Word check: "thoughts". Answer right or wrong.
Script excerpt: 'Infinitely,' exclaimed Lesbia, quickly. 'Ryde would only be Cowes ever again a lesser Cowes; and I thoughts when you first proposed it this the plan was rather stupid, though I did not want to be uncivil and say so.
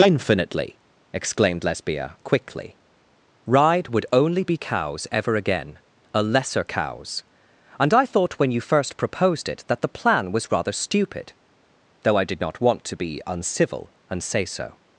wrong